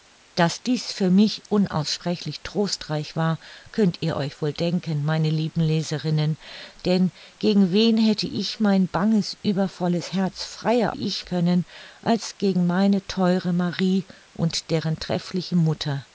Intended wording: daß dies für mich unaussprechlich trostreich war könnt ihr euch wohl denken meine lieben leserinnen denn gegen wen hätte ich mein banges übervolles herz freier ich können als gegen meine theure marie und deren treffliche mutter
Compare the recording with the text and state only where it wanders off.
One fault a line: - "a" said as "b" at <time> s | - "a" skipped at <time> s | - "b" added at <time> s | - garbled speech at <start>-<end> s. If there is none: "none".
none